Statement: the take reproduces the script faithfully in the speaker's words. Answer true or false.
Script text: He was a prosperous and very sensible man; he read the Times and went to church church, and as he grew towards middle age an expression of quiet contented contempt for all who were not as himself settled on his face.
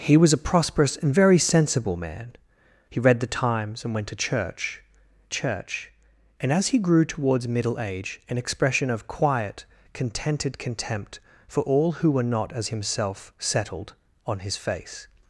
true